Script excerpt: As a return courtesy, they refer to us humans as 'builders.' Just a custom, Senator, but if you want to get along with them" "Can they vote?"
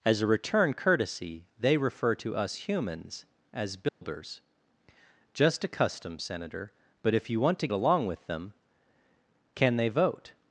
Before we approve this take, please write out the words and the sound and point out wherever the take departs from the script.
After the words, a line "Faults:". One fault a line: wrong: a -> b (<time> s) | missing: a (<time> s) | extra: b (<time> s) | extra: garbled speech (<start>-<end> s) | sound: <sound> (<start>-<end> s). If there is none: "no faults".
As a return courtesy, they refer to us humans as 'builders.' Just a custom, Senator, but if you want to along with them" "Can they vote?"
Faults:
sound: dropout (3.9-4.0 s)
missing: get (7.7 s)